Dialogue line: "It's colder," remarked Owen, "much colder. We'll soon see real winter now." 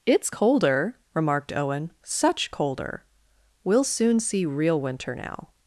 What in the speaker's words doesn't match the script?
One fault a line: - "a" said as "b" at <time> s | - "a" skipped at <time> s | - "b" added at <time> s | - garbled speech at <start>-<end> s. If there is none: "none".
- "much" said as "such" at 2.0 s